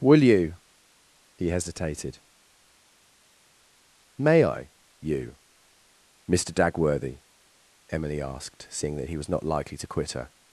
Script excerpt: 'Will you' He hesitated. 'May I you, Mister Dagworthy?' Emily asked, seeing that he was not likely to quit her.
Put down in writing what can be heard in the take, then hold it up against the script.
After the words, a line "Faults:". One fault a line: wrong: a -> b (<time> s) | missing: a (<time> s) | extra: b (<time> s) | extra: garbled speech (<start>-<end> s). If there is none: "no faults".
'Will you' He hesitated. 'May I you, Mister Dagworthy?' Emily asked, seeing that he was not likely to quit her.
Faults:
no faults